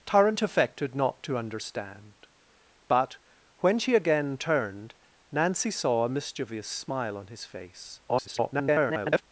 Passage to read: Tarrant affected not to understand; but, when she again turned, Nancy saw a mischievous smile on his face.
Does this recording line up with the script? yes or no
no